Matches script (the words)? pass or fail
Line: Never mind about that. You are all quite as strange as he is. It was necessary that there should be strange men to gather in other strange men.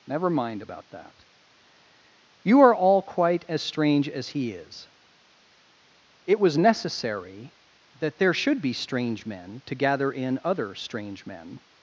pass